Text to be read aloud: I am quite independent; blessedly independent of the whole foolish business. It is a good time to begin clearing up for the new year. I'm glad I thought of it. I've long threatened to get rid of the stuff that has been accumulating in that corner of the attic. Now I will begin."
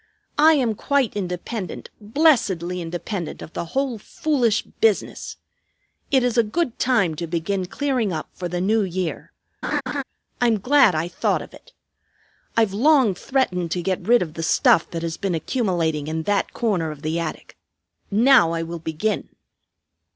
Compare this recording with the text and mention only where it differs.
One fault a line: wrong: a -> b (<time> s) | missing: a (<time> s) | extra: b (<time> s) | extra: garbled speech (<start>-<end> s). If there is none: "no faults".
no faults